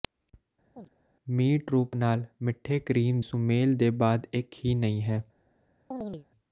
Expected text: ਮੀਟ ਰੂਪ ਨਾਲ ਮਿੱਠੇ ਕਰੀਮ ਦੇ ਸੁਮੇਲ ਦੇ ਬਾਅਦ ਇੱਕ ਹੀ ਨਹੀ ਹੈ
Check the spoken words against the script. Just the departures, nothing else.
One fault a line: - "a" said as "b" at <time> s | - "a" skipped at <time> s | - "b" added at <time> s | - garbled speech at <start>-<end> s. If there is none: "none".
- "ਦੇ" skipped at 3.2 s